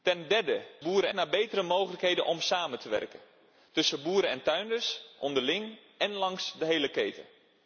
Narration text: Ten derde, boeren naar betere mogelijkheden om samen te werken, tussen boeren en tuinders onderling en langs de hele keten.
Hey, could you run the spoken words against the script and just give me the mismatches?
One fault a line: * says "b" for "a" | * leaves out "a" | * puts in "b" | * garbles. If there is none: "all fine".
all fine